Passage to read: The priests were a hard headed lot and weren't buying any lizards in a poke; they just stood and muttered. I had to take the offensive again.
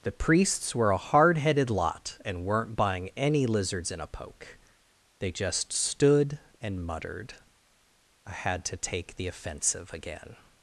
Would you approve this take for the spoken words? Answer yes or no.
yes